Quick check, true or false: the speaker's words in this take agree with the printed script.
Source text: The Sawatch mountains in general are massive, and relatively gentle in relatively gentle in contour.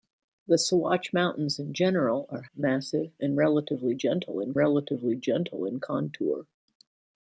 true